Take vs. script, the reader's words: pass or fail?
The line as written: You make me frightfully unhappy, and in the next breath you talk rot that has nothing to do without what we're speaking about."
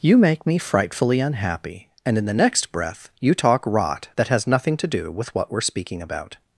fail